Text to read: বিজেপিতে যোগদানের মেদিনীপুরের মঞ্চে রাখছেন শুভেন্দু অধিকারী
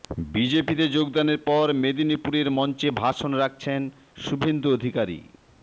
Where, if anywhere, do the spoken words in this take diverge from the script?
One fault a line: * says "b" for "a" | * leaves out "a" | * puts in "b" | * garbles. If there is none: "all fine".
* puts in "পর"
* puts in "ভাষণ"